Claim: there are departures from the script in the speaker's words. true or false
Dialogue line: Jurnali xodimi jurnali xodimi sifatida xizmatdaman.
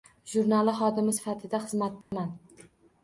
true